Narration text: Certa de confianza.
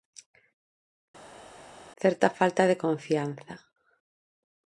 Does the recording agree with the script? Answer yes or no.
no